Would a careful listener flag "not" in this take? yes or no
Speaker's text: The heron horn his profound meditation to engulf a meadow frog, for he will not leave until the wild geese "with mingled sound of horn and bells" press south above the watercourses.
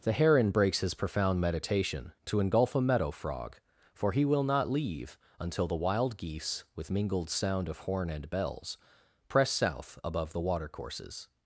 no